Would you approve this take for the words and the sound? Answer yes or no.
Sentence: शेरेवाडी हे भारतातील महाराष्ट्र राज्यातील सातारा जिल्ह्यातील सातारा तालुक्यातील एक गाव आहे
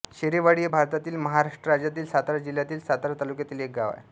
yes